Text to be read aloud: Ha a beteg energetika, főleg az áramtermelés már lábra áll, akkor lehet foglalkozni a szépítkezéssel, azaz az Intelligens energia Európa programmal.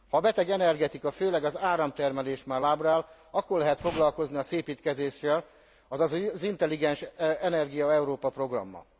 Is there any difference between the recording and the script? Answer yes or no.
no